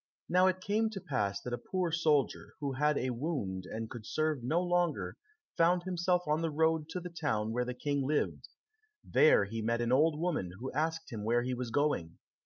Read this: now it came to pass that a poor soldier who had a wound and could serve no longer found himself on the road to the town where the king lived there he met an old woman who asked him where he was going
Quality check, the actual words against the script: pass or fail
pass